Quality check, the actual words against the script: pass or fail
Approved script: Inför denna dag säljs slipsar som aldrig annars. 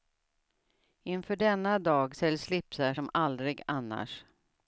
pass